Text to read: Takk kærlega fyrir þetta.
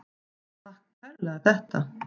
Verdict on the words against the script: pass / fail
fail